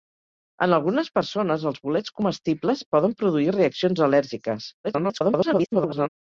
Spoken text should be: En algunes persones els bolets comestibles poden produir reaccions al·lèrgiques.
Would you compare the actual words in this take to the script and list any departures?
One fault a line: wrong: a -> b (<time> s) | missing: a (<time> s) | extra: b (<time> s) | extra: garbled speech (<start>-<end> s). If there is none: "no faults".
extra: garbled speech (4.8-6.1 s)